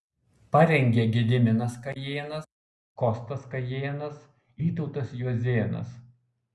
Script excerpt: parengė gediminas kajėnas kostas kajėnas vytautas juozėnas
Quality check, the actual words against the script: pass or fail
pass